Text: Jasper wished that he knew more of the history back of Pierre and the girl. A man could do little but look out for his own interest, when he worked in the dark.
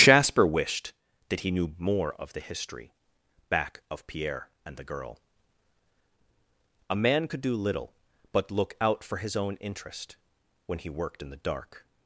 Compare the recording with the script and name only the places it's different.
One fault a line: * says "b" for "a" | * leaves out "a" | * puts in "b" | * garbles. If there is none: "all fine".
all fine